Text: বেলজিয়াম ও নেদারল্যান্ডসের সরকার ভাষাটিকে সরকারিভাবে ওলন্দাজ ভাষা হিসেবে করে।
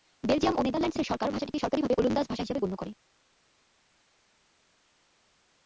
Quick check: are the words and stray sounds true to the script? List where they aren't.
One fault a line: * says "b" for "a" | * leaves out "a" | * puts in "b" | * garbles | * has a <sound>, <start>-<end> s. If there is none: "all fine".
* puts in "গণ্য"